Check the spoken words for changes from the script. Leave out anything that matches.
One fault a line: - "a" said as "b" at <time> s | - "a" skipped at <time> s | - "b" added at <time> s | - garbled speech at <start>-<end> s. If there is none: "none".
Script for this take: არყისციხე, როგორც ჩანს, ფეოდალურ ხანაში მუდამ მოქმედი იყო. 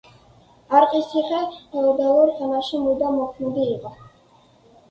- "როგორც ჩანს" skipped at 1.4 s